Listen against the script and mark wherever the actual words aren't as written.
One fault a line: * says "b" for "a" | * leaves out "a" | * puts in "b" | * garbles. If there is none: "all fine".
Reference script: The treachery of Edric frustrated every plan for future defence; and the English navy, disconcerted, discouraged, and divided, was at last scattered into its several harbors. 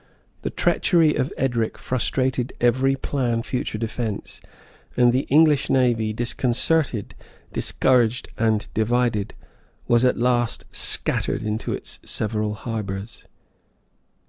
* leaves out "for"